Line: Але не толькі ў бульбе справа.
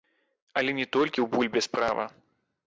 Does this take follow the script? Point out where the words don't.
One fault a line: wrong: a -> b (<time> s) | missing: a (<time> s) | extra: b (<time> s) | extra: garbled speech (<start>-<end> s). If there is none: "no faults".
no faults